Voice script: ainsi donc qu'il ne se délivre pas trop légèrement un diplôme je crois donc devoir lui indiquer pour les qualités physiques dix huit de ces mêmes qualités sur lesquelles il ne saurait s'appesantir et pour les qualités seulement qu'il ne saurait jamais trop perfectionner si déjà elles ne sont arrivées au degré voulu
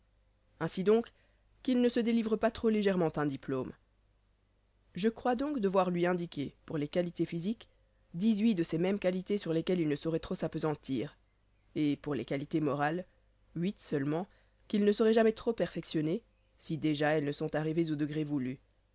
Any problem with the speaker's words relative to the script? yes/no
yes